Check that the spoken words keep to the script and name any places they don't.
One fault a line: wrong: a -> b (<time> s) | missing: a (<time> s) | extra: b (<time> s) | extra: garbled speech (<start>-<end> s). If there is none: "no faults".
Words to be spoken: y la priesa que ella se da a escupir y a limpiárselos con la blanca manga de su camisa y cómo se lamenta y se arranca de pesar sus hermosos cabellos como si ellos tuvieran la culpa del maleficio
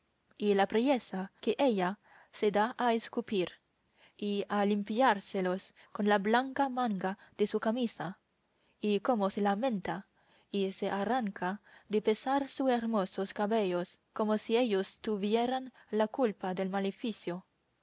no faults